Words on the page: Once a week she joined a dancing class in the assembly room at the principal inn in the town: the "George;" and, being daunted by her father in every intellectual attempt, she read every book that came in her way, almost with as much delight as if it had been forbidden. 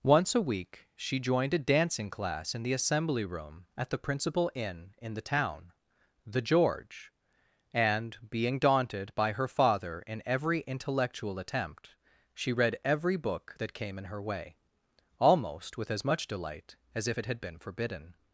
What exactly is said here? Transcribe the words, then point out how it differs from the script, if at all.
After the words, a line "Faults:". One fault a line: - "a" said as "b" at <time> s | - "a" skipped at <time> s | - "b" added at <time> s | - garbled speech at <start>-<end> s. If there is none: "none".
Once a week she joined a dancing class in the assembly room at the principal inn in the town: the "George;" and, being daunted by her father in every intellectual attempt, she read every book that came in her way, almost with as much delight as if it had been forbidden.
Faults:
none